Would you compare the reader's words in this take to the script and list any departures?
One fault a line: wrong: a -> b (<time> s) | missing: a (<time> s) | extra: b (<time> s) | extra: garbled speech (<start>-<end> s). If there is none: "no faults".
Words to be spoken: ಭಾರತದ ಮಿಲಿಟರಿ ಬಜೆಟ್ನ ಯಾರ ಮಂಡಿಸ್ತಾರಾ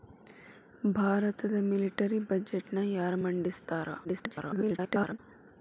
extra: garbled speech (4.0-5.2 s)